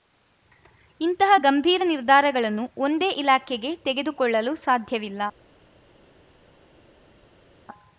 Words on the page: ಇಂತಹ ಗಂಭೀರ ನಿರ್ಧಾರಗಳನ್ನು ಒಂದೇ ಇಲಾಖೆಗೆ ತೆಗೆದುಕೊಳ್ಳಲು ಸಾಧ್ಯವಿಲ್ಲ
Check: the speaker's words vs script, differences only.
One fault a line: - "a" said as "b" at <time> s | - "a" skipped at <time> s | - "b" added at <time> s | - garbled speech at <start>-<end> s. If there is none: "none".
none